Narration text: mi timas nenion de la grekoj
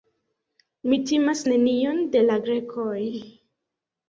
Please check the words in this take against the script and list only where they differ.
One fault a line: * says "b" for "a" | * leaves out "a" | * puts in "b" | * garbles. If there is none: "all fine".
all fine